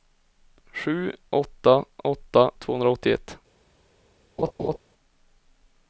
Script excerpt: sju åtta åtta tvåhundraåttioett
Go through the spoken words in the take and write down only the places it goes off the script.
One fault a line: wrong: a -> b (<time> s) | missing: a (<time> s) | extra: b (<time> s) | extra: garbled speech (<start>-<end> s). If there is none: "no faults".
no faults